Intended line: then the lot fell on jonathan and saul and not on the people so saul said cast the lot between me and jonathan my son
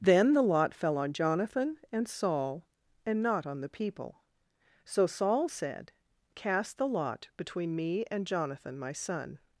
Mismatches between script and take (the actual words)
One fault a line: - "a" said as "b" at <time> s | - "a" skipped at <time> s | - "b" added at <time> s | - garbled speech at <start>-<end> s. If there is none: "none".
none